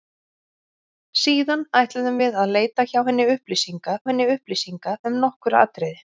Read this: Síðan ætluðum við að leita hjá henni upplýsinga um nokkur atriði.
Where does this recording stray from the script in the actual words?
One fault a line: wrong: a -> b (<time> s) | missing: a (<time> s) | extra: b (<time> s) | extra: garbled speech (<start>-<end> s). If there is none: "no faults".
extra: henni upplýsinga (4.1 s)